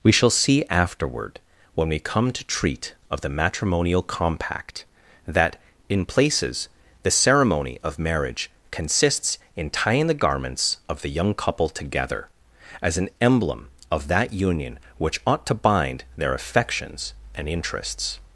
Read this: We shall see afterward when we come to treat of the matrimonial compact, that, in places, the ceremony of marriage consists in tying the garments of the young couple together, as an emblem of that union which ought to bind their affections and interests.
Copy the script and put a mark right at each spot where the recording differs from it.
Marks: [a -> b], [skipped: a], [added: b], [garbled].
We shall see afterward when we come to treat of the matrimonial compact, that, in places, the ceremony of marriage consists in tying the garments of the young couple together, as an emblem of that union which ought to bind their affections and interests.